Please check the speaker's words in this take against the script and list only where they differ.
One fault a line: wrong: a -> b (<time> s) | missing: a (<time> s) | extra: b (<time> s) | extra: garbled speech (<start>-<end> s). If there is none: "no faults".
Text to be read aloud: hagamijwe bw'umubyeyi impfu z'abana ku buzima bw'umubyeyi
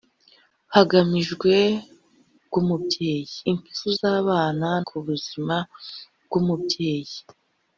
no faults